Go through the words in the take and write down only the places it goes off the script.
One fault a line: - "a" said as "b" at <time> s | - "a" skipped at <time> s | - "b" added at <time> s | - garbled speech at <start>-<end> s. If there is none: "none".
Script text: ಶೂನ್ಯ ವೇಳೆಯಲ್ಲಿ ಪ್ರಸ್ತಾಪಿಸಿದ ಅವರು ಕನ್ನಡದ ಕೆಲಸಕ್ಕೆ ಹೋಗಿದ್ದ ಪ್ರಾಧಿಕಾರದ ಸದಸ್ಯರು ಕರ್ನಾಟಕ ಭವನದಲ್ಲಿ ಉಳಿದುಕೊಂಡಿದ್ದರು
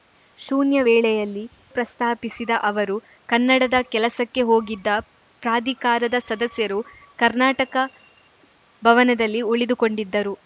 none